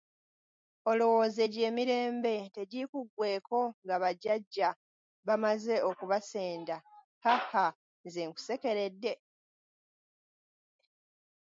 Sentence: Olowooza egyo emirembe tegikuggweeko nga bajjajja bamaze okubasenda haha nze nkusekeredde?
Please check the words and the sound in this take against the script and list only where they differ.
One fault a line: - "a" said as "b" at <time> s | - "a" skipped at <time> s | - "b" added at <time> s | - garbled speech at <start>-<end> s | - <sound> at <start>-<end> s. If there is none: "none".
none